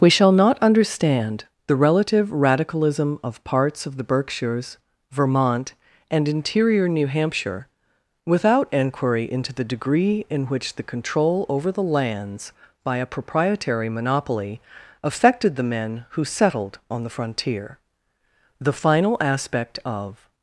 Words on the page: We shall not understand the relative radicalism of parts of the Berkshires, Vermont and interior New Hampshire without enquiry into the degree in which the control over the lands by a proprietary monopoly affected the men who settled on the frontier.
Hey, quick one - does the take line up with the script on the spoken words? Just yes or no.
no